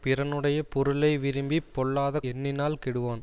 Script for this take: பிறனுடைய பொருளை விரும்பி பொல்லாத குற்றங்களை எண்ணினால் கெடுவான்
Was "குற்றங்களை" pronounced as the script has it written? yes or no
no